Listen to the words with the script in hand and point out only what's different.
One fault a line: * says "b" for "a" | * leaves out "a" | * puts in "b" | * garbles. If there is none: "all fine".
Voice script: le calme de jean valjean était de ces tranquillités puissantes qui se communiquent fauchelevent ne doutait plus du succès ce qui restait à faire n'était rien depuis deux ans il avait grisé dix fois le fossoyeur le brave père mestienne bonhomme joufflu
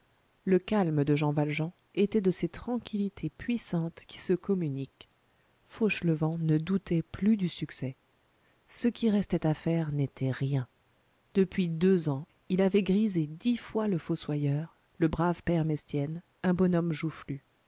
* puts in "un"